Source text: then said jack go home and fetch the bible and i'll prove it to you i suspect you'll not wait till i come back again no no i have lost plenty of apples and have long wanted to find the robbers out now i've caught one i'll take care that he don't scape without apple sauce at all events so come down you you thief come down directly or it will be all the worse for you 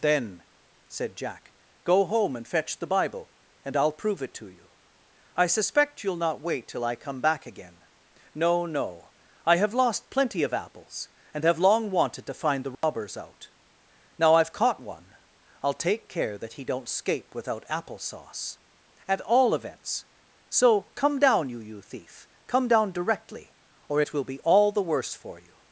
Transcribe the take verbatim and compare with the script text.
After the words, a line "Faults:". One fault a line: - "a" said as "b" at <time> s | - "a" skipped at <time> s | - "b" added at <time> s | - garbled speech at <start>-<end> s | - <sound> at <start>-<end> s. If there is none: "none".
then said jack go home and fetch the bible and i'll prove it to you i suspect you'll not wait till i come back again no no i have lost plenty of apples and have long wanted to find the robbers out now i've caught one i'll take care that he don't scape without apple sauce at all events so come down you you thief come down directly or it will be all the worse for you
Faults:
- dropout at 12.7-12.8 s